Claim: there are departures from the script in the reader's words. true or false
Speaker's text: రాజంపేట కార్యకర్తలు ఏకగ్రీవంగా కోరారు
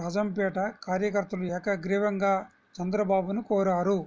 true